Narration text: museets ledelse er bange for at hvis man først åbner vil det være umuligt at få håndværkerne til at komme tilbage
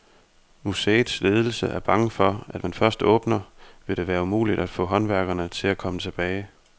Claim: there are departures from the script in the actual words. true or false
true